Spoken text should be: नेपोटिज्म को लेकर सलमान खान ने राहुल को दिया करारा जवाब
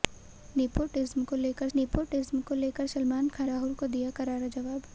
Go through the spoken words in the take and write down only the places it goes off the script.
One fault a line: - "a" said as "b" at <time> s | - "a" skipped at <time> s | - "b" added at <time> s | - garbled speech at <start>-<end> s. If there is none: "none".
- "नेपोटिज्म को लेकर" added at 1.8 s
- "ने" skipped at 3.5 s